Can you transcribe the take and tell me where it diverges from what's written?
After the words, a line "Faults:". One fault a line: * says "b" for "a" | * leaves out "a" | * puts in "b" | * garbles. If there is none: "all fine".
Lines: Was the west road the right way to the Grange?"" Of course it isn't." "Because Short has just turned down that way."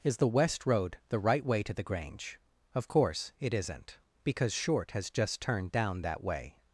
Is the west road the right way to the Grange?"" Of course it isn't." "Because Short has just turned down that way."
Faults:
* says "Is" for "Was"